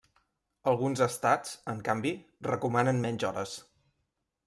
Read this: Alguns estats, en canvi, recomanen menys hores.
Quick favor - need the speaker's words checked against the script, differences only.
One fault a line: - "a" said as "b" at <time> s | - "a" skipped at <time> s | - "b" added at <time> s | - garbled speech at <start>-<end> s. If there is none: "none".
none